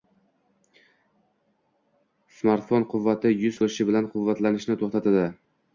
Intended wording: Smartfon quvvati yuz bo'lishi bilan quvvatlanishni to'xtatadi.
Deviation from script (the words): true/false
false